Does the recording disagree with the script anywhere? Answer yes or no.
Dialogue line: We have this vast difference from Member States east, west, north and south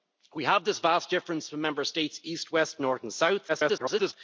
yes